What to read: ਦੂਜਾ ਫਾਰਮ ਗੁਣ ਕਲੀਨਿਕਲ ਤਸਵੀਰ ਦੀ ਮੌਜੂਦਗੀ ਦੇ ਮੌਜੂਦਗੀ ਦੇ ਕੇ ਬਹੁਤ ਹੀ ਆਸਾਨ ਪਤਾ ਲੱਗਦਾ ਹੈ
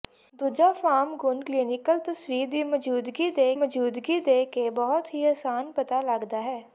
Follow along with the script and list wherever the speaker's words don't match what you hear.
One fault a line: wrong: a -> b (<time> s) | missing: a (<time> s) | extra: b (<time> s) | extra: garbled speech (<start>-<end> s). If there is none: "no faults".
no faults